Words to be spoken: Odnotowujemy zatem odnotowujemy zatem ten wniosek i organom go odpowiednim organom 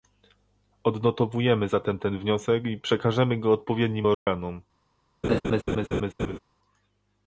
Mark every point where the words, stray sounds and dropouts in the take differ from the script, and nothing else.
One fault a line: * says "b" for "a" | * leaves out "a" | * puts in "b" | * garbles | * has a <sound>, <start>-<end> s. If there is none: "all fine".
* leaves out "odnotowujemy zatem"
* says "przekażemy" for "organom"
* has a dropout, 4.1-4.3 s
* has a laugh, 5.2-6.4 s